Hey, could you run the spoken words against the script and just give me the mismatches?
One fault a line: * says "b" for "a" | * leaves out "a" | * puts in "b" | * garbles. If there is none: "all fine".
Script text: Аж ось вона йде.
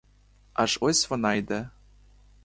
all fine